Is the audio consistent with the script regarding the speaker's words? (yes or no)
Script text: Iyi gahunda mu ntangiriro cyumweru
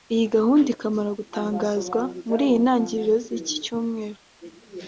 no